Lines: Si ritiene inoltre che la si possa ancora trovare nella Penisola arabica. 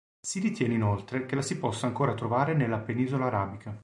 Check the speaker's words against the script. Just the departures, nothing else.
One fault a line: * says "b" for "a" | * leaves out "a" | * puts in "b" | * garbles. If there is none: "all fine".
all fine